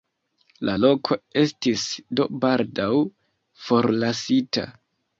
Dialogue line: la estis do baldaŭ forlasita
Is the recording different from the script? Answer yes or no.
yes